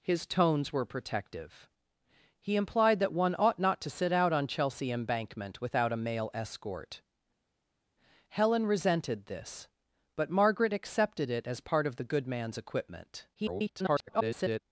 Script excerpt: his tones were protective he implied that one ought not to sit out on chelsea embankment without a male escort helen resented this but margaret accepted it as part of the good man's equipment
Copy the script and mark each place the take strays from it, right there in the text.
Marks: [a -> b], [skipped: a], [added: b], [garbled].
his tones were protective he implied that one ought not to sit out on chelsea embankment without a male escort helen resented this but margaret accepted it as part of the good man's equipment [garbled]